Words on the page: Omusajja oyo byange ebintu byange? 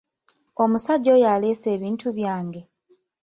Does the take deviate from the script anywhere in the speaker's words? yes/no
yes